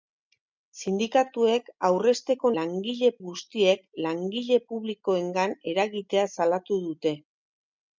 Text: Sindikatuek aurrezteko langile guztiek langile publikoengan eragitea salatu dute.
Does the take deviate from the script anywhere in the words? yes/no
no